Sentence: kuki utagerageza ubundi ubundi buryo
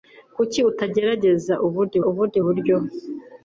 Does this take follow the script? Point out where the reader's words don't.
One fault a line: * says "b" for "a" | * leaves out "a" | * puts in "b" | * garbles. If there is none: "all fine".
all fine